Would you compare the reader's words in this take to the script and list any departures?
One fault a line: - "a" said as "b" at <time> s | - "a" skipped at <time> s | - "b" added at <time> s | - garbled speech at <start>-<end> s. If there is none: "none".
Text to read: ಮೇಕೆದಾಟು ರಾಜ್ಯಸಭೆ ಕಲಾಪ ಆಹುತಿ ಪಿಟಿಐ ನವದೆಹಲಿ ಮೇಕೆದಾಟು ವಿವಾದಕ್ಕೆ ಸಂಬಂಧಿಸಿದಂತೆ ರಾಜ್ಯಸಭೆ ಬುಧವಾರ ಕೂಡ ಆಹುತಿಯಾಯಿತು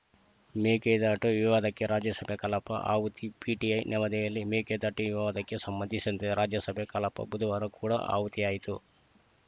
- "ವಿವಾದಕ್ಕೆ" added at 1.4 s
- "ಕಲಾಪ" added at 6.9 s